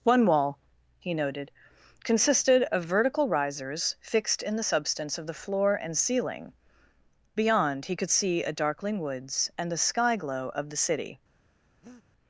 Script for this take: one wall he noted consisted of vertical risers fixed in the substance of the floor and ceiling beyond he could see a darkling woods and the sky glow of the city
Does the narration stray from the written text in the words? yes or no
no